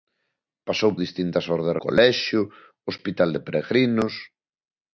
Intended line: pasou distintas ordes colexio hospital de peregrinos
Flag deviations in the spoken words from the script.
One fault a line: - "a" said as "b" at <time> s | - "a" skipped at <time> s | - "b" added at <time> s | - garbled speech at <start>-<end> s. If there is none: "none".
none